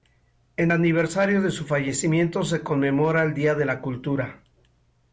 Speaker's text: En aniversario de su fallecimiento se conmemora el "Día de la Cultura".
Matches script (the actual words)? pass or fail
pass